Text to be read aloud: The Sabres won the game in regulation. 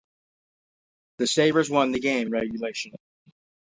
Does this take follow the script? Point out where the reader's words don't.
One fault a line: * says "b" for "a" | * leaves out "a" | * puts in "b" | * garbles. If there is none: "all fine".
* leaves out "in"